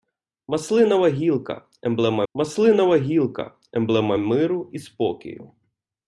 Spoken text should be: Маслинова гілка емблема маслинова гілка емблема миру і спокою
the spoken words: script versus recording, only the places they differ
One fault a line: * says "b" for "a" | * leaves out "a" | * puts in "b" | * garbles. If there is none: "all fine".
all fine